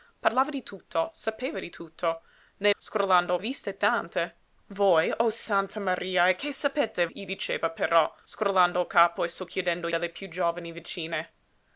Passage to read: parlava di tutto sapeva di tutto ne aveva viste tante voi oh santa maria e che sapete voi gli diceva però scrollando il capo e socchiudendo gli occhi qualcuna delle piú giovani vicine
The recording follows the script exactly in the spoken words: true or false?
false